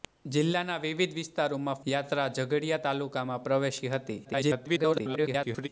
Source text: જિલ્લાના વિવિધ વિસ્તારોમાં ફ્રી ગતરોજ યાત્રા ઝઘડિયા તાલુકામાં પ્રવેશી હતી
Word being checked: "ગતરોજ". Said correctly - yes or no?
no